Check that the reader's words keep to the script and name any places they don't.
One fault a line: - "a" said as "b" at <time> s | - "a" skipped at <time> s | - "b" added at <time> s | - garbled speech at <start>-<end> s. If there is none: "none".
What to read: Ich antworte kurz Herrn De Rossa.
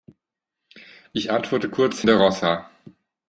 - "Herrn" skipped at 2.0 s